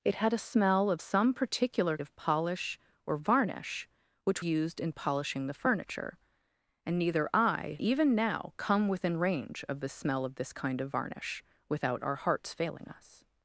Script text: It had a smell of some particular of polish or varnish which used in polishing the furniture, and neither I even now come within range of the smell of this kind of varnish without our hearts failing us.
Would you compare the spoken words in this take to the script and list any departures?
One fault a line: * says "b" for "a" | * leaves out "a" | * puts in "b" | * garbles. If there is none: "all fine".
all fine